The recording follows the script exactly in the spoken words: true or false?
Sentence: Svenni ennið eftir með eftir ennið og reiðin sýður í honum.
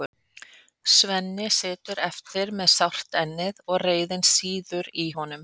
false